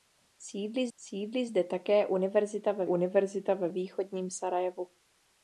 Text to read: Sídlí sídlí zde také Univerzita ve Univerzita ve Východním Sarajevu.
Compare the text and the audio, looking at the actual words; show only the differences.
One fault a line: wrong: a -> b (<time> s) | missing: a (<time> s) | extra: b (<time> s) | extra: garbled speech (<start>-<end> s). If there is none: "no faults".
no faults